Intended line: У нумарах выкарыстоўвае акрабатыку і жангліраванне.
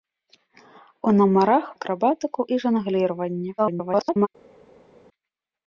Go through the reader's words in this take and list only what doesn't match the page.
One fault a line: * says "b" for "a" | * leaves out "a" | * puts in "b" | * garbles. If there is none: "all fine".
* leaves out "выкарыстоўвае"
* garbles